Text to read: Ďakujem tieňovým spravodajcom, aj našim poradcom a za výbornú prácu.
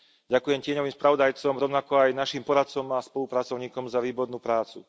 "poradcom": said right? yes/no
yes